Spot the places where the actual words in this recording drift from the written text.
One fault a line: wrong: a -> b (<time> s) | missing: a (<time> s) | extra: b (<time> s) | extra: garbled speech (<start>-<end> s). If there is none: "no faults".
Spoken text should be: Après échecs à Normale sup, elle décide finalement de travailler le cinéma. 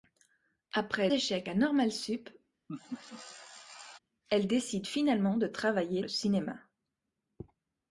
no faults